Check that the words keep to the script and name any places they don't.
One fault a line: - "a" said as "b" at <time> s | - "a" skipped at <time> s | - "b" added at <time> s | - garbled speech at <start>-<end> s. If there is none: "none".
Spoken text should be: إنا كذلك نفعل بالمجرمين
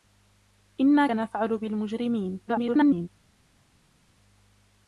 - "كذلك" skipped at 1.1 s
- garbled speech at 2.5-3.1 s